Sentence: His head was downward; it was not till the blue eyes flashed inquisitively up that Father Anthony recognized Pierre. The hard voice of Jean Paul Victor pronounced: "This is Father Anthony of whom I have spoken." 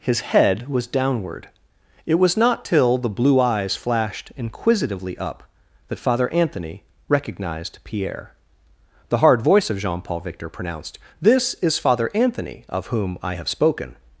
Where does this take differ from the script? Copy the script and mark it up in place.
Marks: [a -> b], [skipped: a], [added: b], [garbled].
His head was downward; it was not till the blue eyes flashed inquisitively up that Father Anthony recognized Pierre. The hard voice of Jean Paul Victor pronounced: "This is Father Anthony of whom I have spoken."